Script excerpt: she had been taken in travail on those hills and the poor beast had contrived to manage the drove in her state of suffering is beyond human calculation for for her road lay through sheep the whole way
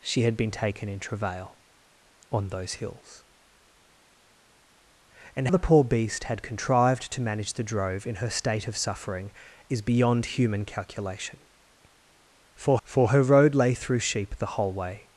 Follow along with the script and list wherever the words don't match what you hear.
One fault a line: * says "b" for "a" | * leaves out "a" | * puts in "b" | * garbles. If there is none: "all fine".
all fine